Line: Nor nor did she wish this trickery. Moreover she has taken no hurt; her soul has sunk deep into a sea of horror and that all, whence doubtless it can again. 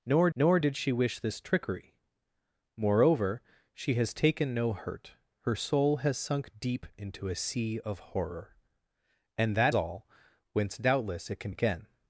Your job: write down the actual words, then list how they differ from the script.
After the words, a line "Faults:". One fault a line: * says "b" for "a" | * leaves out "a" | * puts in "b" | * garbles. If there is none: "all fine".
Nor nor did she wish this trickery. Moreover she has taken no hurt; her soul has sunk deep into a sea of horror and that all, whence doubtless it can again.
Faults:
all fine